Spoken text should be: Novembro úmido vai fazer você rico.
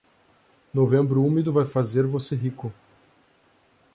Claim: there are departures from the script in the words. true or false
false